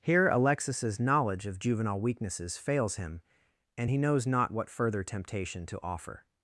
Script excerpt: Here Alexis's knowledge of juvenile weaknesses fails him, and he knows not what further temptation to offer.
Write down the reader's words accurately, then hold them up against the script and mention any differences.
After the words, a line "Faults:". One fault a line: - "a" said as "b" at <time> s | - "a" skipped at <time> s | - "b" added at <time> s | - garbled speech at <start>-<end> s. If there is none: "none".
Here Alexis's knowledge of juvenile weaknesses fails him, and he knows not what further temptation to offer.
Faults:
none